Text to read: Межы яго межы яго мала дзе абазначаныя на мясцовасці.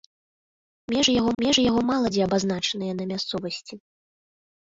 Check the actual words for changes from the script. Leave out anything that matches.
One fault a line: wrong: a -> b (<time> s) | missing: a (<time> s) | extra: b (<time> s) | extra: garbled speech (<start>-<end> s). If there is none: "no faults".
no faults